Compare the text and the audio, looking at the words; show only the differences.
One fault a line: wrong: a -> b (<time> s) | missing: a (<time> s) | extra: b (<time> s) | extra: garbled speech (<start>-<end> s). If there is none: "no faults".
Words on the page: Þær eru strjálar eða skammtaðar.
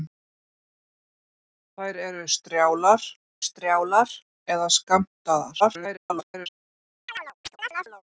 extra: strjálar (3.5 s)
extra: garbled speech (5.6-6.5 s)